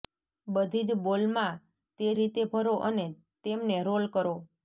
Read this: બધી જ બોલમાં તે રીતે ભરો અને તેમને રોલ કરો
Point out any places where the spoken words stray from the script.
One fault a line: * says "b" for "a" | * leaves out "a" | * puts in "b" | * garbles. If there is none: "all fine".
all fine